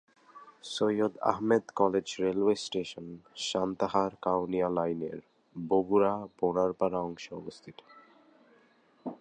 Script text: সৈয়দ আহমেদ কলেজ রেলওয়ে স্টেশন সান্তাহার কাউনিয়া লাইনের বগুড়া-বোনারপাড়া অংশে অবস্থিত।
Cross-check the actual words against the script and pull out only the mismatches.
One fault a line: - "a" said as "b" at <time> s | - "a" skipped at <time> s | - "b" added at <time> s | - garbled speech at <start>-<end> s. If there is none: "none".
none